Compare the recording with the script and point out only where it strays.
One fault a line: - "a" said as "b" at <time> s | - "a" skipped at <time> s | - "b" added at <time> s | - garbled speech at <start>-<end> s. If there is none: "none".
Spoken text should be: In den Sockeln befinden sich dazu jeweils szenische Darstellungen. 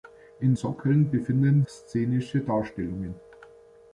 - "den" skipped at 0.6 s
- "sich dazu jeweils" skipped at 1.6 s